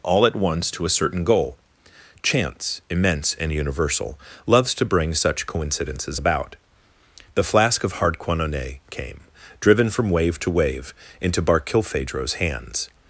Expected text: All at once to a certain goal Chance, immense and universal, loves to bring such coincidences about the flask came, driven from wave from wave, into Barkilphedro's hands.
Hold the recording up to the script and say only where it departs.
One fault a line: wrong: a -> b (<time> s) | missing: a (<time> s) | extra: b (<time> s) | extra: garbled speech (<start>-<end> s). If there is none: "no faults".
extra: of Hardquanonne (7.8 s)
wrong: from -> to (10.4 s)